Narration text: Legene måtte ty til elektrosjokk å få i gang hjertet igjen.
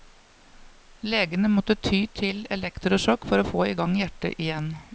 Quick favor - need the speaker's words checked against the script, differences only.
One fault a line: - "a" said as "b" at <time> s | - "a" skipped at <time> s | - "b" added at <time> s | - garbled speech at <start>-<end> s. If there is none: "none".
- "for" added at 3.3 s